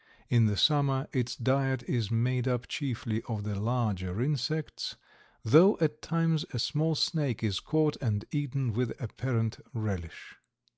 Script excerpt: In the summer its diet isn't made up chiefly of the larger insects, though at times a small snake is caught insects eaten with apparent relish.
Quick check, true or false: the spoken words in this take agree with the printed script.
false